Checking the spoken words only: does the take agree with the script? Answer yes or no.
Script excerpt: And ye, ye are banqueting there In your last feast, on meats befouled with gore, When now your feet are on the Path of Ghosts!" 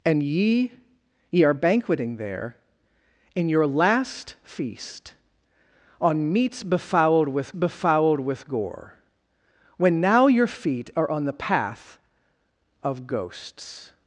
no